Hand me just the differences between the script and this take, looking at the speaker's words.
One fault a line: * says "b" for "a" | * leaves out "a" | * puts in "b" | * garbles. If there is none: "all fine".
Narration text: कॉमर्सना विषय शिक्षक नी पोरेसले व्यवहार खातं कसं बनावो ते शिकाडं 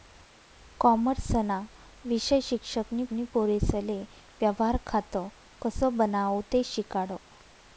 * puts in "नी"